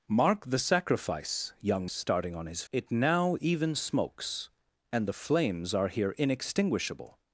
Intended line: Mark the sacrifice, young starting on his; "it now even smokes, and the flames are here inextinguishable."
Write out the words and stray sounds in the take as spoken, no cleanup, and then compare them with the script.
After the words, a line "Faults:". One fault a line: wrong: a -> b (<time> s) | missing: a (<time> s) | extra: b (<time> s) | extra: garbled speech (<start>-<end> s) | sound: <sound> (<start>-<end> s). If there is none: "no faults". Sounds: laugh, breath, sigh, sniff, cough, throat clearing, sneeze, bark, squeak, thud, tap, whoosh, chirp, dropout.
Mark the sacrifice, young starting on his; "it now even smokes, and the flames are here inextinguishable."
Faults:
no faults